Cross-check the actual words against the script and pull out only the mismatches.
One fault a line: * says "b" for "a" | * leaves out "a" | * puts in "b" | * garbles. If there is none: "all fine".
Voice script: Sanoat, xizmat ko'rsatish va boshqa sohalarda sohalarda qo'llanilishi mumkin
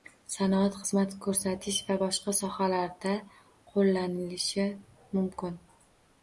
* leaves out "sohalarda"